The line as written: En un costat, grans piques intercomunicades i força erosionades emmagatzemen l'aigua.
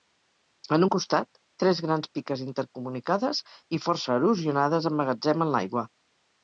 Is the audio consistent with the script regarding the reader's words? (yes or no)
no